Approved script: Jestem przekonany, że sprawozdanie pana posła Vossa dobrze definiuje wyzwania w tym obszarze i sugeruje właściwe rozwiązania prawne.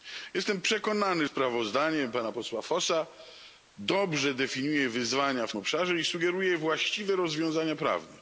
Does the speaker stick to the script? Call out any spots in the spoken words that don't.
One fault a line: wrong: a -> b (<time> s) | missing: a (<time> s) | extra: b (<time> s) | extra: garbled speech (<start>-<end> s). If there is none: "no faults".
missing: że (1.3 s)
missing: tym (5.5 s)